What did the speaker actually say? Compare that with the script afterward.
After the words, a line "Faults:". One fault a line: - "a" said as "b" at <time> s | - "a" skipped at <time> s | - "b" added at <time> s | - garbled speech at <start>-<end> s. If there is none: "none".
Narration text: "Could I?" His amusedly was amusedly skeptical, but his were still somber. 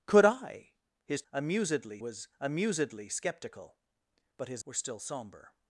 "Could I?" His amusedly was amusedly skeptical, but his were still somber.
Faults:
none